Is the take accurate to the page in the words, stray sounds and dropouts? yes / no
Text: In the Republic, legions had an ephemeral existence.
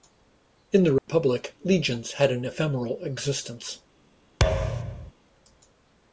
no